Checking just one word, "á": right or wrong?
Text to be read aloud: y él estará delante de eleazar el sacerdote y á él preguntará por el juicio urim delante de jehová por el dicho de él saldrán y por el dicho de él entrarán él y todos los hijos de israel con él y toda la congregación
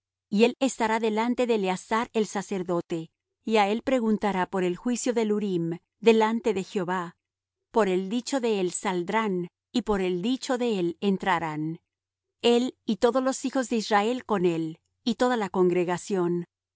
right